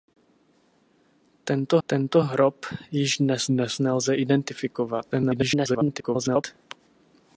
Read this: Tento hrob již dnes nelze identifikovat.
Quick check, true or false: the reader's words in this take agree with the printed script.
false